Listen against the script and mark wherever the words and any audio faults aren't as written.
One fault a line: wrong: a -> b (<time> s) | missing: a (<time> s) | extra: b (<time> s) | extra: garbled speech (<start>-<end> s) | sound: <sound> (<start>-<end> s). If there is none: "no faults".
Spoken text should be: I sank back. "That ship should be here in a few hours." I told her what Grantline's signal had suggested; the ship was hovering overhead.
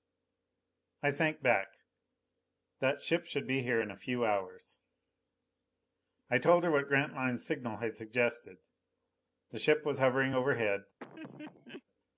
sound: laugh (11.0-11.8 s)